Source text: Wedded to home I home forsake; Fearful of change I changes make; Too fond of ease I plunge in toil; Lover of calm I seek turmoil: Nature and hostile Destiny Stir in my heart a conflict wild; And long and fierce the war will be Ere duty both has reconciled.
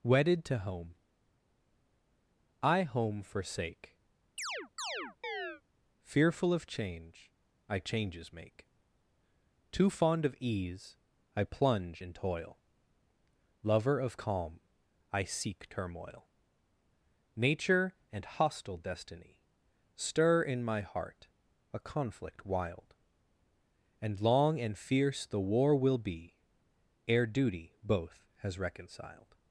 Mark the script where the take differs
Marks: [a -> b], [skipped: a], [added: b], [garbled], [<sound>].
Wedded to home I home forsake; [chirp] Fearful of change I changes make; Too fond of ease I plunge in toil; Lover of calm I seek turmoil: Nature and hostile Destiny Stir in my heart a conflict wild; And long and fierce the war will be Ere duty both has reconciled.